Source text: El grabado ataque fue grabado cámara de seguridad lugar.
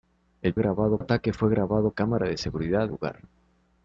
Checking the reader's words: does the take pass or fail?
pass